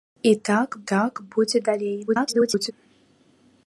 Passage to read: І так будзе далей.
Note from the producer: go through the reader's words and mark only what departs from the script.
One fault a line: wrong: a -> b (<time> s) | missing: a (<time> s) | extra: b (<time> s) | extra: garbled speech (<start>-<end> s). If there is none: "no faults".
extra: так (0.9 s)
extra: garbled speech (2.1-2.7 s)